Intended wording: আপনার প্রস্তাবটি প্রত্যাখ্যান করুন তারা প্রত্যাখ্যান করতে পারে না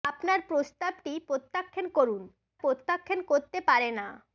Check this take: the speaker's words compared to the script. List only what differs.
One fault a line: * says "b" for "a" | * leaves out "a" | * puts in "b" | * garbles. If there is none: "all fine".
* leaves out "তারা"